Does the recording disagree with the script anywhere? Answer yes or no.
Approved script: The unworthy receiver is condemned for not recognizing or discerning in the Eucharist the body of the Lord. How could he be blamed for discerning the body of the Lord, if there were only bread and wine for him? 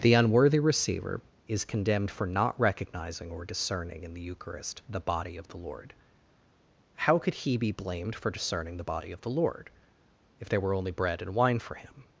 no